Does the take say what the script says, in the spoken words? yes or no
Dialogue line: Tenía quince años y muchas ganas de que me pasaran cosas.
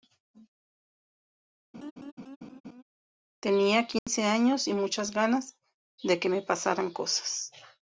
yes